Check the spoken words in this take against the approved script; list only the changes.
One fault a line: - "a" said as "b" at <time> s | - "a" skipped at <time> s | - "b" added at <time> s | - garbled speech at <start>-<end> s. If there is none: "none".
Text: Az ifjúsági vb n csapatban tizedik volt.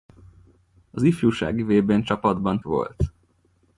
- "tizedik" skipped at 2.6 s